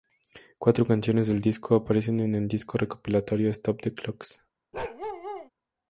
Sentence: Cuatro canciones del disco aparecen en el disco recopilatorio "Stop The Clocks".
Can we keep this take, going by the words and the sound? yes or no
no